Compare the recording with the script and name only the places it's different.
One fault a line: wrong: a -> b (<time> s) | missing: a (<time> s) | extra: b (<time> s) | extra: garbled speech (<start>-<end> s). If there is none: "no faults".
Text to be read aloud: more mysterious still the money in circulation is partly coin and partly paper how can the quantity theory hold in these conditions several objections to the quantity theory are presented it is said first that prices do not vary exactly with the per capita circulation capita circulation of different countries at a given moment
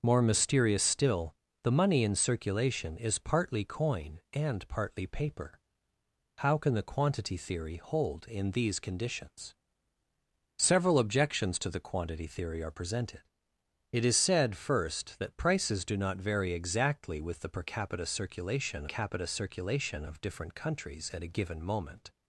no faults